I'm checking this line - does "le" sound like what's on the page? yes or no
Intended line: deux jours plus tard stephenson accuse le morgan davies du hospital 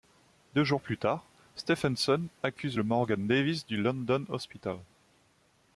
yes